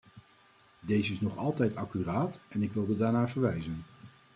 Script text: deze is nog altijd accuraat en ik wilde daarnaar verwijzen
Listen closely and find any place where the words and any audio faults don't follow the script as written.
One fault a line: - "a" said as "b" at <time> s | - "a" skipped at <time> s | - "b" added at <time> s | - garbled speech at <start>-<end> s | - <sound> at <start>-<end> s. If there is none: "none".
none